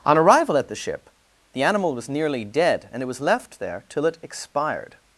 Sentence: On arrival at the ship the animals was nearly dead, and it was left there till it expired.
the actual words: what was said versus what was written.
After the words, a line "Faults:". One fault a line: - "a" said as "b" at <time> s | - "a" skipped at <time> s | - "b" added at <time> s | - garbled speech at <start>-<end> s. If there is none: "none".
On arrival at the ship the animal was nearly dead, and it was left there till it expired.
Faults:
- "animals" said as "animal" at 1.6 s